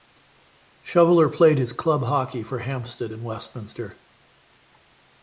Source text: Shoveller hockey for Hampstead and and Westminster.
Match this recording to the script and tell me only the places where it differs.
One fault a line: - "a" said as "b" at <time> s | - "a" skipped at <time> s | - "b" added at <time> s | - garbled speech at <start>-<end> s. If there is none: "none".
- "played his club" added at 1.3 s
- "and" skipped at 3.2 s